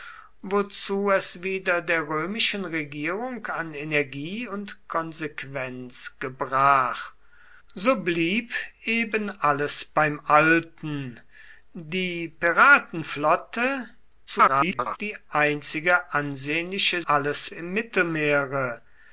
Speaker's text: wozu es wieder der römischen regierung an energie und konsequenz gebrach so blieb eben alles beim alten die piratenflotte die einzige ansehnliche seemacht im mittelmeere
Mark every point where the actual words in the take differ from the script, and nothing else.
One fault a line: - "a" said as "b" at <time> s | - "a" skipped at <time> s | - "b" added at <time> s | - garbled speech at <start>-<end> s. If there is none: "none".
- garbled speech at 14.3-15.0 s
- "seemacht" said as "alles" at 17.1 s